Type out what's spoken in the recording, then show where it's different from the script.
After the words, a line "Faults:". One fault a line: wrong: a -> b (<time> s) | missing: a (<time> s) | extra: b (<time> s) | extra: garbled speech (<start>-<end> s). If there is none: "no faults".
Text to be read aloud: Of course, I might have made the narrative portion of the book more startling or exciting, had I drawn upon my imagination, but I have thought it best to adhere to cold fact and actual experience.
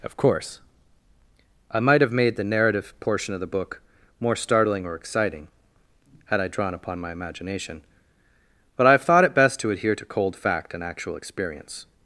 Of course, I might have made the narrative portion of the book more startling or exciting, had I drawn upon my imagination, but I have thought it best to adhere to cold fact and actual experience.
Faults:
no faults